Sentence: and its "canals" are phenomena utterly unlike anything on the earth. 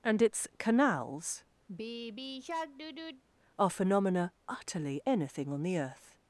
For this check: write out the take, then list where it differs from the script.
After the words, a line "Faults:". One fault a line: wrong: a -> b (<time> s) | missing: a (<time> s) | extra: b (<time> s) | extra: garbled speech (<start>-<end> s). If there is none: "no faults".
and its "canals" are phenomena utterly anything on the earth.
Faults:
missing: unlike (5.0 s)